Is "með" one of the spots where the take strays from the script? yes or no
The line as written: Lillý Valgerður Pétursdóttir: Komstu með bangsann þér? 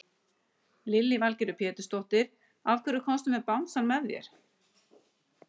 no